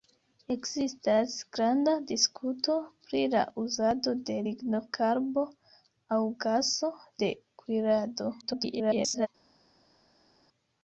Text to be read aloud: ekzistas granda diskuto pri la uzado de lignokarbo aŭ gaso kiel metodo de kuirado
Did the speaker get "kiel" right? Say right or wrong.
wrong